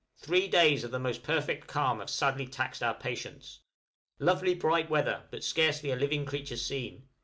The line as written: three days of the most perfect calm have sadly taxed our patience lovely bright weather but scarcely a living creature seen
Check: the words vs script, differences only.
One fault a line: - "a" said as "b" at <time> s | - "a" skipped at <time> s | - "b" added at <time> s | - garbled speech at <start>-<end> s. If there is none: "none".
none